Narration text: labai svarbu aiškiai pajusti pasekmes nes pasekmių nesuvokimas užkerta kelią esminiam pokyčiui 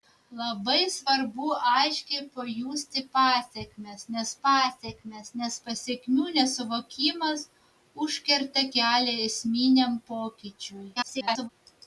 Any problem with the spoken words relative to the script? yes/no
yes